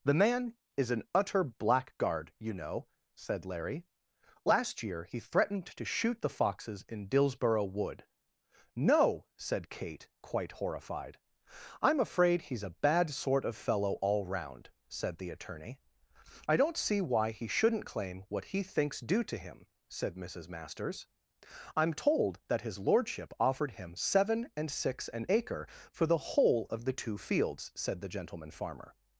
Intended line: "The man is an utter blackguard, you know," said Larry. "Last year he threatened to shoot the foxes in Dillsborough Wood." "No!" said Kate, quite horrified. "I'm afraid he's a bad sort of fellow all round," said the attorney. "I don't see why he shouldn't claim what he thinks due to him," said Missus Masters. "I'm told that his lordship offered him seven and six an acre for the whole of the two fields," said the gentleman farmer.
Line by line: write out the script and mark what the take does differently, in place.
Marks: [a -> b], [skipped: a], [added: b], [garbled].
"The man is an utter blackguard, you know," said Larry. "Last year he threatened to shoot the foxes in Dillsborough Wood." "No!" said Kate, quite horrified. "I'm afraid he's a bad sort of fellow all round," said the attorney. "I don't see why he shouldn't claim what he thinks due to him," said Missus Masters. "I'm told that his lordship offered him seven and six an acre for the whole of the two fields," said the gentleman farmer.